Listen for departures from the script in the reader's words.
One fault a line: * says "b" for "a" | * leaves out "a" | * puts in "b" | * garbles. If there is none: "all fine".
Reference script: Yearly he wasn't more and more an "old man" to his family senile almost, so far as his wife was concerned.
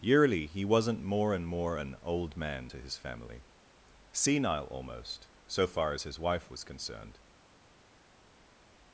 all fine